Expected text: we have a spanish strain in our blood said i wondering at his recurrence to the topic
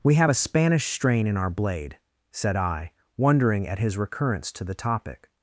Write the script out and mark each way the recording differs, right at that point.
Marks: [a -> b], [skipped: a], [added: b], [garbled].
we have a spanish strain in our [blood -> blade] said i wondering at his recurrence to the topic